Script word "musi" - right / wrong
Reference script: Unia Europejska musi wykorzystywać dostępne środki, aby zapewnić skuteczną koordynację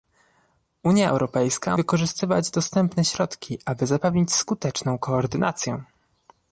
wrong